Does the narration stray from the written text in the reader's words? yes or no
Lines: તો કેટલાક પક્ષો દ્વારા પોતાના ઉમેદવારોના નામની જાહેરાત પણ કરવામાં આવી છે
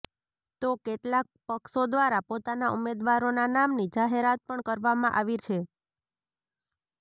no